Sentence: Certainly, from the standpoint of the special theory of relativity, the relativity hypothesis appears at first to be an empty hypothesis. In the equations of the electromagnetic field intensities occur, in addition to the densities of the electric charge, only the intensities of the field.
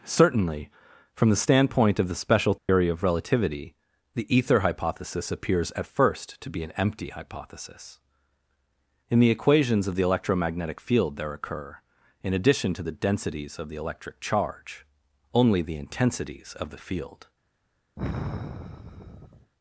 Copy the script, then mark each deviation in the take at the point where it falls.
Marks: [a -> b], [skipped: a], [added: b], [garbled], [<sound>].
Certainly, from the standpoint of the special theory [dropout] of relativity, the [relativity -> ether] hypothesis appears at first to be an empty hypothesis. In the equations of the electromagnetic field [intensities -> there] occur, in addition to the densities of the electric charge, only the intensities of the field. [sigh]